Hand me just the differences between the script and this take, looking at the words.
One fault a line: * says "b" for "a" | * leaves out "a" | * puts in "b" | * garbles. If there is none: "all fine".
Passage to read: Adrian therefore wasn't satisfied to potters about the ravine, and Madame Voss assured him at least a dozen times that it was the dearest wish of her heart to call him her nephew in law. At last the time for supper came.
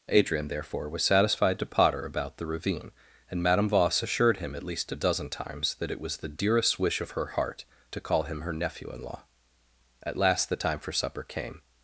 * says "was" for "wasn't"
* says "potter" for "potters"